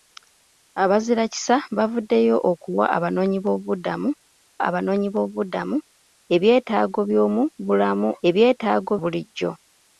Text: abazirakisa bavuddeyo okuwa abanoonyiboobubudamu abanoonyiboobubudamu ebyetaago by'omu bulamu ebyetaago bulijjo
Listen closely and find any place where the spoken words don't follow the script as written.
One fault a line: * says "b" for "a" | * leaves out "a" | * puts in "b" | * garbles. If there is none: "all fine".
all fine